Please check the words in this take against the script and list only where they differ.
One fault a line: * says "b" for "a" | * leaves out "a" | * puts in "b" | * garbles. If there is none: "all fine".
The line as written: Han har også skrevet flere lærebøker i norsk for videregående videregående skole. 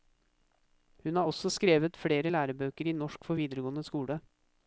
* says "Hun" for "Han"
* leaves out "videregående"